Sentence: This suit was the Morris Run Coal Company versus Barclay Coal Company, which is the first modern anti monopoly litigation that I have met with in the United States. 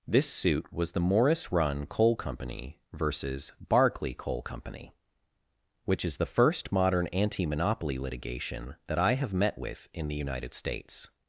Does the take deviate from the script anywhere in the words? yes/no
no